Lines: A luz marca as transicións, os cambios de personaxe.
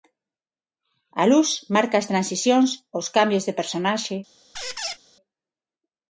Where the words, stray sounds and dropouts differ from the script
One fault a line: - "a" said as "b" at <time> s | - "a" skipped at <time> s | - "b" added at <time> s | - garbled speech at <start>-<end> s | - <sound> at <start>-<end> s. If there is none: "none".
- squeak at 4.5-5.0 s